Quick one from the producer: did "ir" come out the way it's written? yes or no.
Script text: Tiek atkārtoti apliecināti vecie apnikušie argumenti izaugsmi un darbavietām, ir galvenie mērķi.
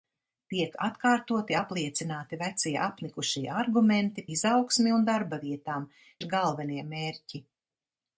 yes